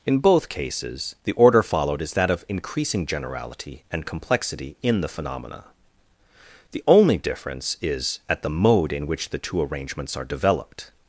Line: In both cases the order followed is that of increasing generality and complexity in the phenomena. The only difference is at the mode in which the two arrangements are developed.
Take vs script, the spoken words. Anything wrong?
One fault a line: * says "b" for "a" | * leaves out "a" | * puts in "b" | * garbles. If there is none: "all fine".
all fine